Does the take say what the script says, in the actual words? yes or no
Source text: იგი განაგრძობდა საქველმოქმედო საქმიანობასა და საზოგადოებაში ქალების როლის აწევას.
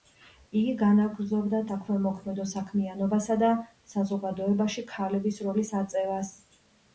yes